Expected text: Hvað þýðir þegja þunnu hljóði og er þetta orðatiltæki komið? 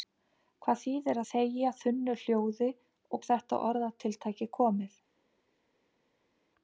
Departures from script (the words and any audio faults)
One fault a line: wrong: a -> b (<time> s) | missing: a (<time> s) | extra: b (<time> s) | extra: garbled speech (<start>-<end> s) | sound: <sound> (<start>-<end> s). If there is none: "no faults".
no faults